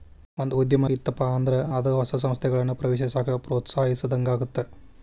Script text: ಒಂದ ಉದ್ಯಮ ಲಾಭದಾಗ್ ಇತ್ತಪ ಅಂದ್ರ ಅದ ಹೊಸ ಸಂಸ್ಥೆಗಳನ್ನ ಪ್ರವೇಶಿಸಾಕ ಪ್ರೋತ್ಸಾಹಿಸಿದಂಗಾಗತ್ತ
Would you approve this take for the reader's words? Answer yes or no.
no